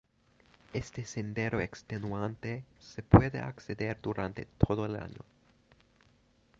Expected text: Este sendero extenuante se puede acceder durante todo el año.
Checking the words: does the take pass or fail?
pass